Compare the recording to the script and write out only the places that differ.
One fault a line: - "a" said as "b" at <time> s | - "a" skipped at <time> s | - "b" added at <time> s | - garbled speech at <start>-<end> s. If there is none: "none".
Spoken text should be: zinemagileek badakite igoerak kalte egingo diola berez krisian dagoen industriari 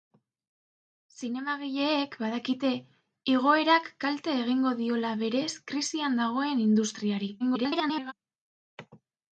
- garbled speech at 7.4-8.1 s